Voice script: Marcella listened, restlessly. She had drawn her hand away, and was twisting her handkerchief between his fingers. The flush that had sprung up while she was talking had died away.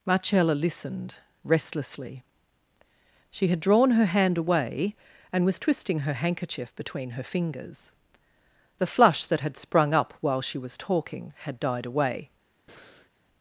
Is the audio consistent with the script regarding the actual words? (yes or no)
no